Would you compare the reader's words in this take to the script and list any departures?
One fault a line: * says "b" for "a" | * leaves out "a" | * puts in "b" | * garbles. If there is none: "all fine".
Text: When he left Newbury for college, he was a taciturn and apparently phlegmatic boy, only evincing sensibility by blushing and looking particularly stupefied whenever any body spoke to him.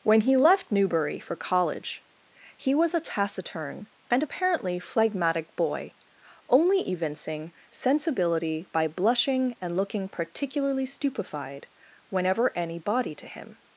* leaves out "spoke"